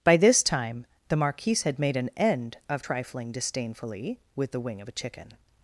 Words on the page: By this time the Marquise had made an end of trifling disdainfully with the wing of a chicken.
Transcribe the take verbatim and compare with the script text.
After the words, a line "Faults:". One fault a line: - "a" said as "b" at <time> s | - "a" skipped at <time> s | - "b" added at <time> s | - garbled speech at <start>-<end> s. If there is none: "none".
By this time the Marquise had made an end of trifling disdainfully with the wing of a chicken.
Faults:
none